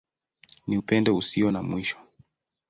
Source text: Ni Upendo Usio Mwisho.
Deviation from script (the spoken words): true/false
true